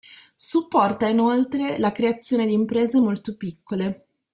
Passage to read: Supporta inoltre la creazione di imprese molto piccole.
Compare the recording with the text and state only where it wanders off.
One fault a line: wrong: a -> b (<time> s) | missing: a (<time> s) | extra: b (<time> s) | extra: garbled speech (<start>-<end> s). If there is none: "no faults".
no faults